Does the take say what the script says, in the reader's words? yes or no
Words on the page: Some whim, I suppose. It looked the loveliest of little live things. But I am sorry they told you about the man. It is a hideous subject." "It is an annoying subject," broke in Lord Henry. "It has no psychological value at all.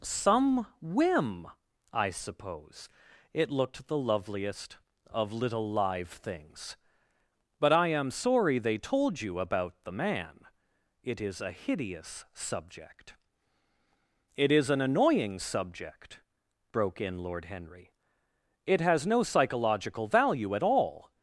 yes